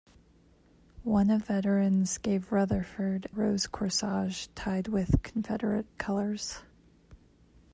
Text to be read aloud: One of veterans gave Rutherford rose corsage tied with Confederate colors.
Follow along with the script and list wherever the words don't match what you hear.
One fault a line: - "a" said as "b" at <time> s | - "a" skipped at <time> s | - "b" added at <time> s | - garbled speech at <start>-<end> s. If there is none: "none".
none